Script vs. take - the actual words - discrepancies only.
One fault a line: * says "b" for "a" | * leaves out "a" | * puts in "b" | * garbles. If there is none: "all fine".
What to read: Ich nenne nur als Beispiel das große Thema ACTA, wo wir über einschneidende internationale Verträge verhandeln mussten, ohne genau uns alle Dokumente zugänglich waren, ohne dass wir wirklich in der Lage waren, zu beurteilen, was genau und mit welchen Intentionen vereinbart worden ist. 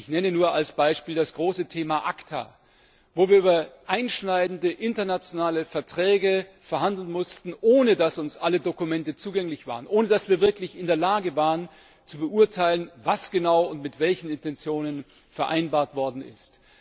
* says "dass" for "genau"